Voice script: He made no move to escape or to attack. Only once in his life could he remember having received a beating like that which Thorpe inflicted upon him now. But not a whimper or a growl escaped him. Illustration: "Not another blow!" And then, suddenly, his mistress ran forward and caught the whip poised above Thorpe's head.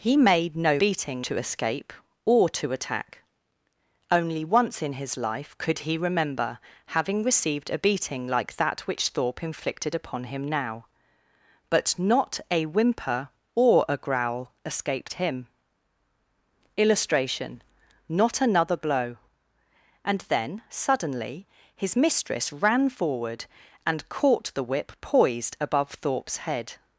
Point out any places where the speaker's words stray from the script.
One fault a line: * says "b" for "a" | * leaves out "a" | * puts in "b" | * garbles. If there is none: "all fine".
* says "beating" for "move"